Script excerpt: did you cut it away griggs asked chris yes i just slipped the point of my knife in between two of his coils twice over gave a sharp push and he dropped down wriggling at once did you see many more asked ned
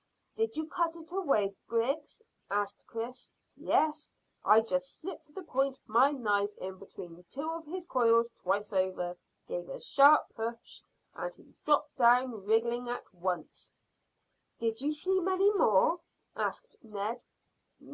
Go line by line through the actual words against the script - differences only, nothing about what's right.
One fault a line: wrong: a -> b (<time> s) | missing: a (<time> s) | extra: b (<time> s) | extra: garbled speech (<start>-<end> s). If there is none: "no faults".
no faults